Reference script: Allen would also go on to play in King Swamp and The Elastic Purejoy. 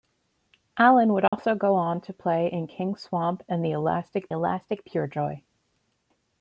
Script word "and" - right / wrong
right